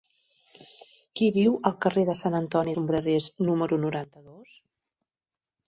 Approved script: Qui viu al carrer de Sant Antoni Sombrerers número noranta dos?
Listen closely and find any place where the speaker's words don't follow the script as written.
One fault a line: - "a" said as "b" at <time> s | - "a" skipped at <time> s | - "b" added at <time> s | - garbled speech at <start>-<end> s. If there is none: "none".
none